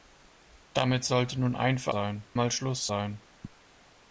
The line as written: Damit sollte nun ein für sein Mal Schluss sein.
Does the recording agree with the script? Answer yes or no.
yes